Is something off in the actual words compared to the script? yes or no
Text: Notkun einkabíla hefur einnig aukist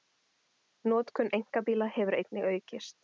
no